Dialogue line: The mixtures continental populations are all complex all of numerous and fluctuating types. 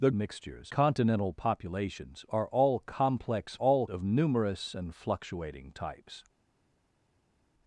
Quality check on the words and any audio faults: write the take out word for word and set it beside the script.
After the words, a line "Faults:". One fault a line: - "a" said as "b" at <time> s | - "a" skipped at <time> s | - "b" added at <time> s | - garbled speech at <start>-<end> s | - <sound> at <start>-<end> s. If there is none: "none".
The mixtures continental populations are all complex all of numerous and fluctuating types.
Faults:
none